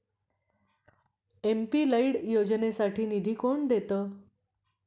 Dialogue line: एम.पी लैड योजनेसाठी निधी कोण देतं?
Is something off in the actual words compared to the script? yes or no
no